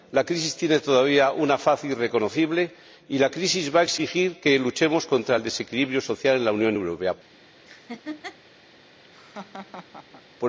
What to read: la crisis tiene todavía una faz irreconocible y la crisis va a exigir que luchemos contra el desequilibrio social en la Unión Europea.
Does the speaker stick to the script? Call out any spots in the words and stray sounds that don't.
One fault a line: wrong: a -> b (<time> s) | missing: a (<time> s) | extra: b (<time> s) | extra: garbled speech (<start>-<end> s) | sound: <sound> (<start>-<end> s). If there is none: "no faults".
sound: laugh (7.7-8.4 s)
sound: laugh (9.0-10.2 s)